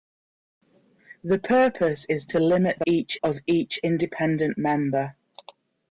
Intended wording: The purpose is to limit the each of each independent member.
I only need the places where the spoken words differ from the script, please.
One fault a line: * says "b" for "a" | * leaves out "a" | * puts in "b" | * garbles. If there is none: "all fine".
all fine